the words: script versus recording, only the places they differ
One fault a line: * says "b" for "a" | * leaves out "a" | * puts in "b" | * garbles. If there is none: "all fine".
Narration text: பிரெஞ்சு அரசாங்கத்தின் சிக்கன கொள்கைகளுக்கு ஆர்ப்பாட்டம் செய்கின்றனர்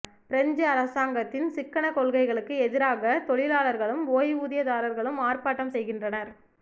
* puts in "எதிராக தொழிலாளர்களும் ஓய்வூதியதாரர்களும்"